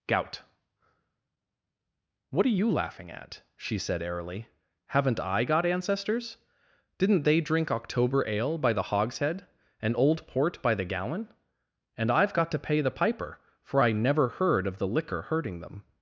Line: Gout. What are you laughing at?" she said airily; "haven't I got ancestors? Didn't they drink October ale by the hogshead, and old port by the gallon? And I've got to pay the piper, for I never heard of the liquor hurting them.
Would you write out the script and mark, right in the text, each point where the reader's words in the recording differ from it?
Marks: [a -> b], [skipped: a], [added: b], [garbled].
Gout. What are you laughing at?" she said airily; "haven't I got ancestors? Didn't they drink October ale by the hogshead, and old port by the gallon? And I've got to pay the piper, for I never heard of the liquor hurting them.